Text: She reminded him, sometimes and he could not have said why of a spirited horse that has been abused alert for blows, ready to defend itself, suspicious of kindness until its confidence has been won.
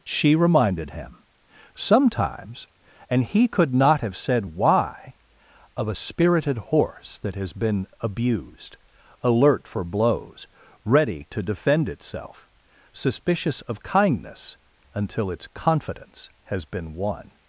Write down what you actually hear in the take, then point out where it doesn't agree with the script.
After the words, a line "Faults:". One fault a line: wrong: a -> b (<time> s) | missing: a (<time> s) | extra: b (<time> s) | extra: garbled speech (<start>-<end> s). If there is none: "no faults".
She reminded him, sometimes and he could not have said why of a spirited horse that has been abused alert for blows, ready to defend itself, suspicious of kindness until its confidence has been won.
Faults:
no faults